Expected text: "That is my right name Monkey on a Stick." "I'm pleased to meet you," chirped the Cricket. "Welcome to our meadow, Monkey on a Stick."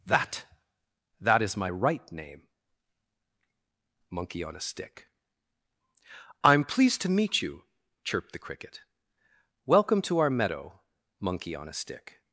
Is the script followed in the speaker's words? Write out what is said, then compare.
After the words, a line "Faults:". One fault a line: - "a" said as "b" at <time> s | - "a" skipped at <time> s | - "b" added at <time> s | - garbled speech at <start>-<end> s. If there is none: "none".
"That that is my right name Monkey on a Stick." "I'm pleased to meet you," chirped the Cricket. "Welcome to our meadow, Monkey on a Stick."
Faults:
- "that" added at 1.2 s